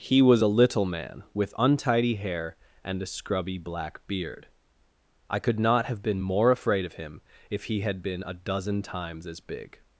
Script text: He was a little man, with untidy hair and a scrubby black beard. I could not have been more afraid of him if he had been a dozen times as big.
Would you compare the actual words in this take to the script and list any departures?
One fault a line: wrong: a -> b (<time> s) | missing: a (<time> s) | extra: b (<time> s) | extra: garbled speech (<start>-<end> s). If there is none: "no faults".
no faults